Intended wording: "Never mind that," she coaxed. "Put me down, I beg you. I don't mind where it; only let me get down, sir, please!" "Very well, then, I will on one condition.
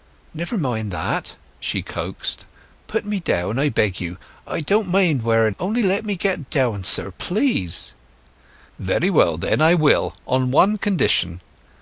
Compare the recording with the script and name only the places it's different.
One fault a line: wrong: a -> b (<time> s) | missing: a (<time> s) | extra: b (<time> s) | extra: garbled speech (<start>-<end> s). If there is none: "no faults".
no faults